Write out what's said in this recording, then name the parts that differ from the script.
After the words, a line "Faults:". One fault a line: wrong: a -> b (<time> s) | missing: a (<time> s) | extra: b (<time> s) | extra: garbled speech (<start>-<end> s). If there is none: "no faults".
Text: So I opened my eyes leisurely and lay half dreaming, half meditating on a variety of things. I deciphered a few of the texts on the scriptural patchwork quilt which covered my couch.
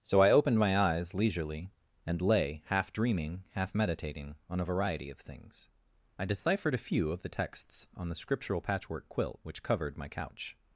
So I opened my eyes leisurely and lay half dreaming, half meditating on a variety of things. I deciphered a few of the texts on the scriptural patchwork quilt which covered my couch.
Faults:
no faults